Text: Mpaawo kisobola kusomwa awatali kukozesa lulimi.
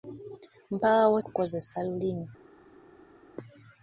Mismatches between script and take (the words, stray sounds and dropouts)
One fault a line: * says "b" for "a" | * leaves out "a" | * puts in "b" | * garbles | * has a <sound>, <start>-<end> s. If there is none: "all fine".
* leaves out "kisobola kusomwa awatali"